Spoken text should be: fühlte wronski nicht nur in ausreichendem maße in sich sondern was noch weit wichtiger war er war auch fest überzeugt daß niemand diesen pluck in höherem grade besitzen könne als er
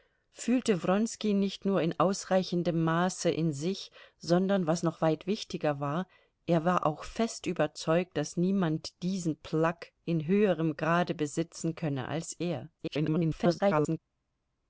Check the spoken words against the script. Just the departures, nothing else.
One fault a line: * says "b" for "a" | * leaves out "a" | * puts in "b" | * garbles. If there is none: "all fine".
* garbles